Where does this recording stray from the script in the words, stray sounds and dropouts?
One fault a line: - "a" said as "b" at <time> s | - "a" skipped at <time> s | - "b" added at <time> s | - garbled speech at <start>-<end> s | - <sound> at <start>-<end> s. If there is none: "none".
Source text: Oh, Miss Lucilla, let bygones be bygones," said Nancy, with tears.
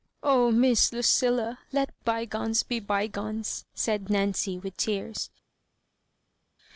none